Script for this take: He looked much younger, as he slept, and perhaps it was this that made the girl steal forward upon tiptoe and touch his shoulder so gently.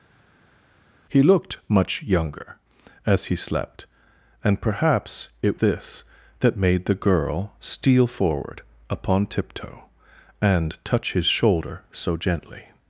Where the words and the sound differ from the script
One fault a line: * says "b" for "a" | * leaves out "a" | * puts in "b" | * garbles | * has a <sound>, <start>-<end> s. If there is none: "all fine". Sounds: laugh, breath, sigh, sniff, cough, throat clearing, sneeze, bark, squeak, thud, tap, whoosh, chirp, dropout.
* leaves out "was"